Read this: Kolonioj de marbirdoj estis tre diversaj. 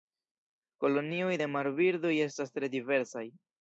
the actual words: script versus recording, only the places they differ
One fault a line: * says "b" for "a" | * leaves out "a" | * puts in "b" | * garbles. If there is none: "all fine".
* says "estas" for "estis"